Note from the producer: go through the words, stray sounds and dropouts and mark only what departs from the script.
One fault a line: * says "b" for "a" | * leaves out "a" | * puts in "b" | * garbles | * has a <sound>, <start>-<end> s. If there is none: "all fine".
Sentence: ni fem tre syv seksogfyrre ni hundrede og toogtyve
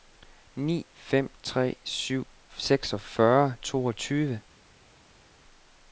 * leaves out "ni hundrede og"